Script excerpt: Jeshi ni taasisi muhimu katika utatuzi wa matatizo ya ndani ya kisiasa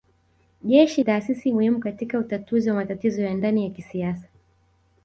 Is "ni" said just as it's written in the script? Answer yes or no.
no